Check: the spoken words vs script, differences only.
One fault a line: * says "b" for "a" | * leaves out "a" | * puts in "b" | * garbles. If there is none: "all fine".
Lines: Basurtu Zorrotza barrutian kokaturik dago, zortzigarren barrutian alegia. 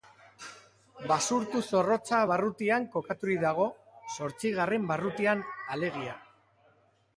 all fine